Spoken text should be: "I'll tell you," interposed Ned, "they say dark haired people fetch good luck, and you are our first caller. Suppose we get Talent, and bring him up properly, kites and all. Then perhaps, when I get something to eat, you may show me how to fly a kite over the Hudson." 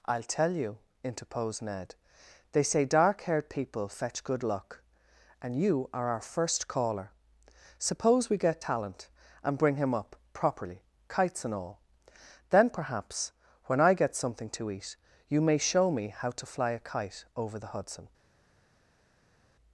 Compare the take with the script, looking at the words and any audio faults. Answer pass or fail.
pass